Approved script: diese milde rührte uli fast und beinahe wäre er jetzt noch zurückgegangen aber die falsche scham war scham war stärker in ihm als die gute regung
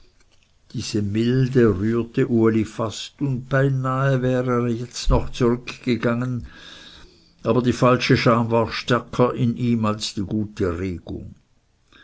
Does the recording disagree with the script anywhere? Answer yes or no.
yes